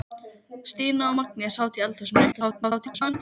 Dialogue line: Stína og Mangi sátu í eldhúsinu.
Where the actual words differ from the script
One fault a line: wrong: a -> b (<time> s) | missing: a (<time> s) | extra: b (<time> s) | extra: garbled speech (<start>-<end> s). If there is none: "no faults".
extra: garbled speech (2.3-3.1 s)